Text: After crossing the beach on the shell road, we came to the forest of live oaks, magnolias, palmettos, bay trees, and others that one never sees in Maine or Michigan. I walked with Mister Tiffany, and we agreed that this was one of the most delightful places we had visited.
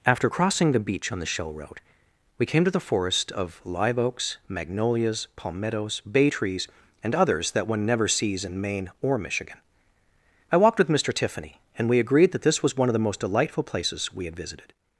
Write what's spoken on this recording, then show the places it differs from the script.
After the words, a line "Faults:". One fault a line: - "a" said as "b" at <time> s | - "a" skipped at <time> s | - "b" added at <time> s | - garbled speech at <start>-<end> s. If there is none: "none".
After crossing the beach on the shell road, we came to the forest of live oaks, magnolias, palmettos, bay trees, and others that one never sees in Maine or Michigan. I walked with Mister Tiffany, and we agreed that this was one of the most delightful places we had visited.
Faults:
none